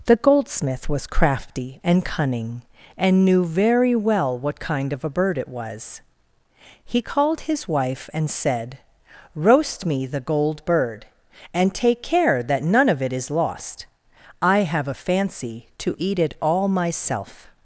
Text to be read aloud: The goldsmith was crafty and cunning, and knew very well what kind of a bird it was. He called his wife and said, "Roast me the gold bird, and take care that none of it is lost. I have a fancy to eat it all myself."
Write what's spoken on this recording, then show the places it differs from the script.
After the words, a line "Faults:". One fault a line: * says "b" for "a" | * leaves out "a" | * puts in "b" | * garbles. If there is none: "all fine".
The goldsmith was crafty and cunning, and knew very well what kind of a bird it was. He called his wife and said, "Roast me the gold bird, and take care that none of it is lost. I have a fancy to eat it all myself."
Faults:
all fine